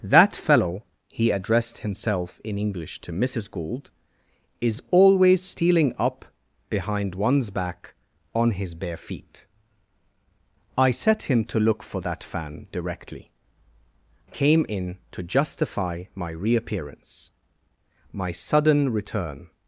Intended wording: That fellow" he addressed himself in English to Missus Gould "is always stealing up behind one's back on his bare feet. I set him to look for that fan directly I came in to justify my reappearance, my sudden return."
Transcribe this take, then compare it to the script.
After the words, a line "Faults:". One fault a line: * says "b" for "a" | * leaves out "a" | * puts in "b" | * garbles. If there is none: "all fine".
That fellow" he addressed himself in English to Missus Gould "is always stealing up behind one's back on his bare feet. I set him to look for that fan directly came in to justify my reappearance, my sudden return."
Faults:
* leaves out "I"